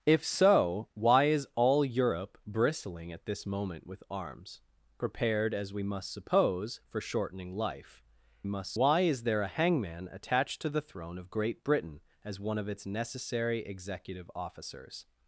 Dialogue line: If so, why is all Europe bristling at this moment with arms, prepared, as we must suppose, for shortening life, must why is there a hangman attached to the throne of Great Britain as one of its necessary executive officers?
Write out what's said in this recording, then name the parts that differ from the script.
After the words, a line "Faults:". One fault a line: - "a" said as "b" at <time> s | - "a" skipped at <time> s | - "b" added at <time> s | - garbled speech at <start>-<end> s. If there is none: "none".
If so, why is all Europe bristling at this moment with arms, prepared, as we must suppose, for shortening life, must why is there a hangman attached to the throne of Great Britain as one of its necessary executive officers?
Faults:
none